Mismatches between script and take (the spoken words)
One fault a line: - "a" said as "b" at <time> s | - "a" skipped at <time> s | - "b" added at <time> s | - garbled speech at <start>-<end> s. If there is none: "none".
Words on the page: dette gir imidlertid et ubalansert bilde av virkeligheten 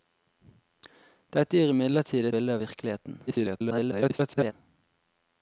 - "et ubalansert" skipped at 2.3 s
- garbled speech at 3.3-4.5 s